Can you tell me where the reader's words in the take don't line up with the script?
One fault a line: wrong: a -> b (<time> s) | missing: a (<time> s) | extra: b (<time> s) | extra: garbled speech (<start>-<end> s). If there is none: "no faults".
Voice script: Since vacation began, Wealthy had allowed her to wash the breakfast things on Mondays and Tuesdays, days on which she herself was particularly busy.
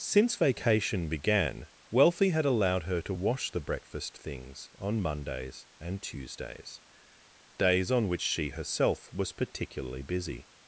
no faults